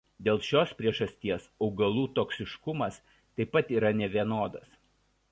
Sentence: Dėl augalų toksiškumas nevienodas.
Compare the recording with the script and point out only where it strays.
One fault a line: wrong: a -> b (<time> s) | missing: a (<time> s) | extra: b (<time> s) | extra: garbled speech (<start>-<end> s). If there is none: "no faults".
extra: šios priežasties (0.5 s)
extra: taip pat yra (3.1 s)